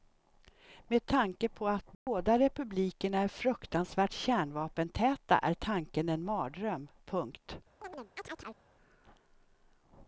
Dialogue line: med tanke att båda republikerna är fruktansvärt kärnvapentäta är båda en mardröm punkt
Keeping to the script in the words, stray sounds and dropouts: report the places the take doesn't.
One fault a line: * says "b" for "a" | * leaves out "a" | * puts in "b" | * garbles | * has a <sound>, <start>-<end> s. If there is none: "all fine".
* puts in "på"
* has a dropout, 1.9-2.1 s
* says "tanken" for "båda"
* has a chirp, 7.8-8.6 s